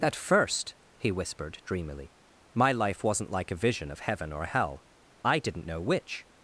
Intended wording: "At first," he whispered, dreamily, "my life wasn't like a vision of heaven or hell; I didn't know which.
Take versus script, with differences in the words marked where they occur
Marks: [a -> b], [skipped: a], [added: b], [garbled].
"At first," he whispered, dreamily, "my life wasn't like a vision of heaven or hell; I didn't know which.